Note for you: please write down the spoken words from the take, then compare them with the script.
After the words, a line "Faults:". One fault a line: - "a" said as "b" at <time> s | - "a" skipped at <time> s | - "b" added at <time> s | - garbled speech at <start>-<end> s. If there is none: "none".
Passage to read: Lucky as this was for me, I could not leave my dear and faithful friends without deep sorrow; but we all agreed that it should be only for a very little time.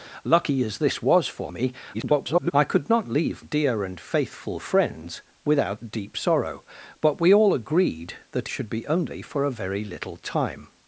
Lucky as this was for me, [garbled] I could not leave dear and faithful friends without deep sorrow; but we all agreed that should be only for a very little time.
Faults:
- garbled speech at 1.9-2.5 s
- "my" skipped at 3.4 s
- "it" skipped at 8.5 s